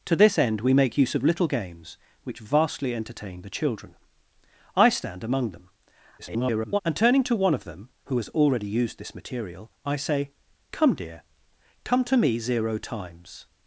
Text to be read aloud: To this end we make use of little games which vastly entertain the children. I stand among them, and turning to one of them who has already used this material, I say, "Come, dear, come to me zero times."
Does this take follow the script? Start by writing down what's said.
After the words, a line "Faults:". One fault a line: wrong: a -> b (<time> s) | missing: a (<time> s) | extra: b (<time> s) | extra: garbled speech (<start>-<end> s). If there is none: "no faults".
To this end we make use of little games which vastly entertain the children. I stand among them, [garbled] and turning to one of them who has already used this material, I say, "Come, dear, come to me zero times."
Faults:
extra: garbled speech (6.2-6.8 s)